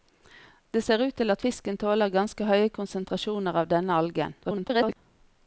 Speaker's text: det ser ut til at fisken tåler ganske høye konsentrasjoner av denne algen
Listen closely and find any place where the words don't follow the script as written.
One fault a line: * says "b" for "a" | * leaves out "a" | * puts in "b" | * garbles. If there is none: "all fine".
* garbles